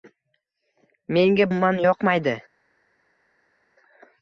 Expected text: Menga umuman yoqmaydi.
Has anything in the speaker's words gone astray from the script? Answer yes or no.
no